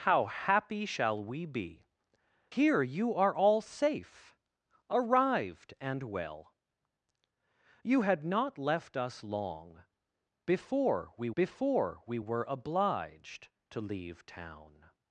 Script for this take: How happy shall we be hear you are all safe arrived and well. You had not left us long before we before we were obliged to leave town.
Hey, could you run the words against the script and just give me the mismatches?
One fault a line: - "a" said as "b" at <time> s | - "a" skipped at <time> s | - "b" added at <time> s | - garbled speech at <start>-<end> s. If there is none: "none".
none